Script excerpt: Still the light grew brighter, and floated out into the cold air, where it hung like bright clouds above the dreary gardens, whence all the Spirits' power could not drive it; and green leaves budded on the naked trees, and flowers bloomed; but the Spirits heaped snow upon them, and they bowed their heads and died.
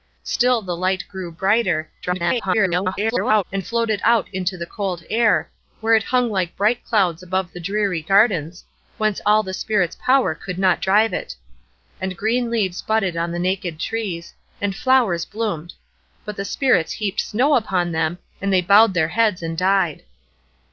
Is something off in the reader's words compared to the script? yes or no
yes